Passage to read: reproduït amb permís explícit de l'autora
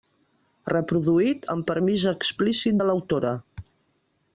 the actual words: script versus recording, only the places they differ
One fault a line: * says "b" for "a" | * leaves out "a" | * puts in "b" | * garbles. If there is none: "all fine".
all fine